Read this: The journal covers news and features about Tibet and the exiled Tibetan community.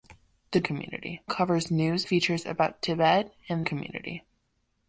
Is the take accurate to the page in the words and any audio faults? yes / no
no